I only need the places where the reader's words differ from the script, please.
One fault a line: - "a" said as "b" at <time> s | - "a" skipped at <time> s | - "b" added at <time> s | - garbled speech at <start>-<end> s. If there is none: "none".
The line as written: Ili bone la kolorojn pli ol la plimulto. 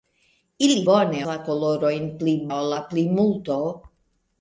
none